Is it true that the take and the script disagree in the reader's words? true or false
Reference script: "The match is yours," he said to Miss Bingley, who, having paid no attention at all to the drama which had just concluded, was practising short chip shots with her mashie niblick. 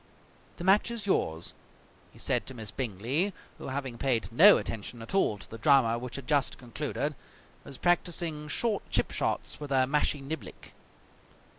false